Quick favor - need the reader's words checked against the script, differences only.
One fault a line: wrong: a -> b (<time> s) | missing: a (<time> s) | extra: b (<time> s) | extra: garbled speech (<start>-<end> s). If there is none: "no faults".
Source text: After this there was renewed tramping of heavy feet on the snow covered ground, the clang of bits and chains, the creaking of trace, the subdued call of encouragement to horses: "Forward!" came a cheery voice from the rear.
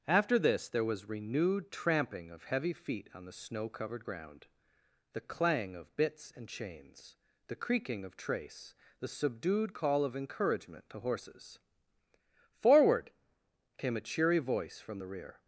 no faults